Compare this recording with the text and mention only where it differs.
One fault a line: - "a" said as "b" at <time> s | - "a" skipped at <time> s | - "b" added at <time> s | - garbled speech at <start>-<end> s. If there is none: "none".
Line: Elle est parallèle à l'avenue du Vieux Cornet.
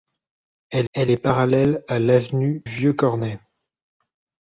- "elle" added at 0.9 s
- "du" skipped at 2.6 s